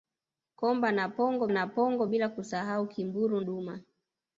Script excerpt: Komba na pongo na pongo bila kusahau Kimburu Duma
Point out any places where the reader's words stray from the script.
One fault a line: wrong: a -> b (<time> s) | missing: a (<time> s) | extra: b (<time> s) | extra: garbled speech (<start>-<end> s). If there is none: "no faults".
no faults